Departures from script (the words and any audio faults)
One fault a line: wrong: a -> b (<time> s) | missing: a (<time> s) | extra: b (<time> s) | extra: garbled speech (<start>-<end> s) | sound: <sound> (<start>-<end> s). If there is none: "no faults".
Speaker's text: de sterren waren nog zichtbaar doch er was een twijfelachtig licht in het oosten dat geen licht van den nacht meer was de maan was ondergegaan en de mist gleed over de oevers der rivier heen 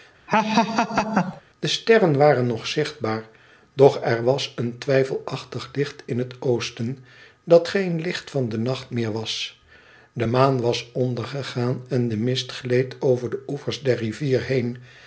sound: laugh (0.3-1.4 s)